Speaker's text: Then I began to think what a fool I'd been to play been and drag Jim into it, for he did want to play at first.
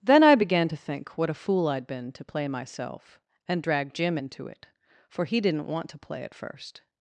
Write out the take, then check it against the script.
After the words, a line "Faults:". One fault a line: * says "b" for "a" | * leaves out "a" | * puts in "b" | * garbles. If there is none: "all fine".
Then I began to think what a fool I'd been to play myself and drag Jim into it, for he didn't want to play at first.
Faults:
* says "myself" for "been"
* says "didn't" for "did"